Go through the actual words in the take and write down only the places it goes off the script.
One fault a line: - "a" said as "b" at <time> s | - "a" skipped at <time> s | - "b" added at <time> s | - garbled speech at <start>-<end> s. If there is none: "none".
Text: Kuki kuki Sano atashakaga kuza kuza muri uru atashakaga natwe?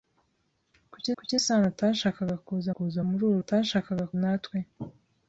none